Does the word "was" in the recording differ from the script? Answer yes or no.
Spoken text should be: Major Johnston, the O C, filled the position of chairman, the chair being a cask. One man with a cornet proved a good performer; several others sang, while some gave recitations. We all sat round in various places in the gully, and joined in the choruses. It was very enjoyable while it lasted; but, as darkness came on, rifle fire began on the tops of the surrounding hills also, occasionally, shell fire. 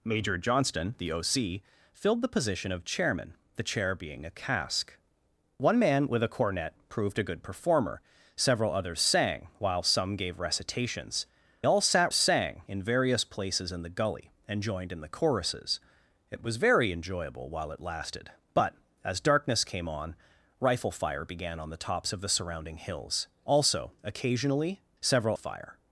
no